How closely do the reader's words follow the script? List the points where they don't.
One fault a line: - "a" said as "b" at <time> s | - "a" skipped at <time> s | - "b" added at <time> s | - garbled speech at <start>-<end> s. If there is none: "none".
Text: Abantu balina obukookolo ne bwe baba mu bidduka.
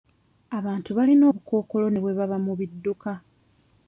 none